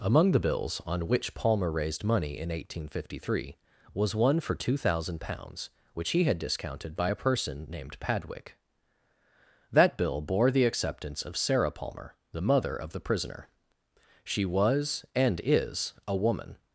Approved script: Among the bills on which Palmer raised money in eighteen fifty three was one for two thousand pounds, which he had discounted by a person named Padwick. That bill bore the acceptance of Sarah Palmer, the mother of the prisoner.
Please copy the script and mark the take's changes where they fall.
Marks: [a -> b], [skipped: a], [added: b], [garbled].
Among the bills on which Palmer raised money in eighteen fifty three was one for two thousand pounds, which he had discounted by a person named Padwick. That bill bore the acceptance of Sarah Palmer, the mother of the prisoner. [added: She was and is a woman]